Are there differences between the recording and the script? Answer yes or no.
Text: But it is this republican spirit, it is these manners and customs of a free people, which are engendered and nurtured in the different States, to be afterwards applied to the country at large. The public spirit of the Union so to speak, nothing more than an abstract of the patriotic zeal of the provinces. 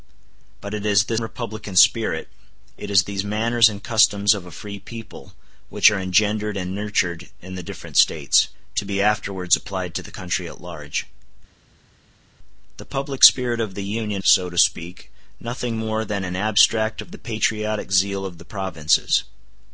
no